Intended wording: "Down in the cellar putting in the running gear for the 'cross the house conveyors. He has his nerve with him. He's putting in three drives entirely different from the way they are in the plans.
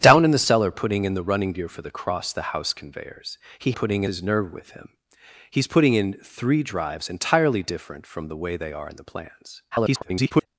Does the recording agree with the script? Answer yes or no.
no